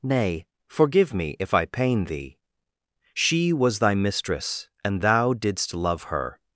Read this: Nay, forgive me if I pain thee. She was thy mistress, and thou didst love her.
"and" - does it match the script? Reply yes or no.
yes